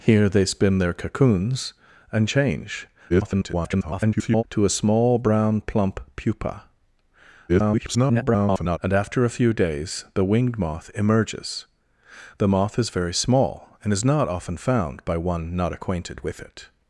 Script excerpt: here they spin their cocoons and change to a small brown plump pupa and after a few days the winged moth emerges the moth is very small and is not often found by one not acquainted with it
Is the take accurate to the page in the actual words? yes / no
no